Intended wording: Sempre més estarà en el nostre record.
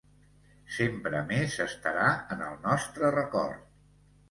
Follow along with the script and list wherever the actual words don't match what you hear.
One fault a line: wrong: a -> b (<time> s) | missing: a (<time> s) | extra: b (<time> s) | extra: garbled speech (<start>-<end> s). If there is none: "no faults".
no faults